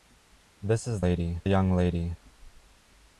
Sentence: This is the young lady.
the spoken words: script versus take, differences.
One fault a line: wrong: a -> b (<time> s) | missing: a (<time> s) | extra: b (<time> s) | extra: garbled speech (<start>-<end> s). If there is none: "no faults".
wrong: the -> lady (1.0 s)